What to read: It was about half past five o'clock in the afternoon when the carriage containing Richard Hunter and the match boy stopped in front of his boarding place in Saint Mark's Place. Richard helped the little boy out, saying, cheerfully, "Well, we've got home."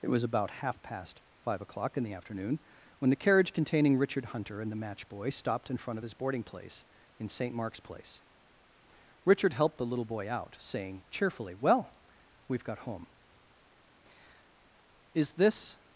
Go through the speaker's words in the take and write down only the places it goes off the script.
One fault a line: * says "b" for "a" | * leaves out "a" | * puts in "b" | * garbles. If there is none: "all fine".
* puts in "Is this"